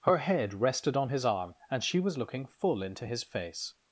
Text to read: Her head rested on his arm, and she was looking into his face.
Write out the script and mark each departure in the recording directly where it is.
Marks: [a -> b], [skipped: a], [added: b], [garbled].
Her head rested on his arm, and she was looking [added: full] into his face.